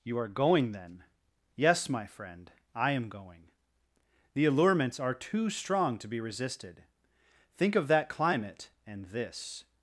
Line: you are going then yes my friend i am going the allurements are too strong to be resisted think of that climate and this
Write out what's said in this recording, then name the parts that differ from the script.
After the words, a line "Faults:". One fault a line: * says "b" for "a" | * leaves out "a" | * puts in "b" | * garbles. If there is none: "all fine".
you are going then yes my friend i am going the allurements are too strong to be resisted think of that climate and this
Faults:
all fine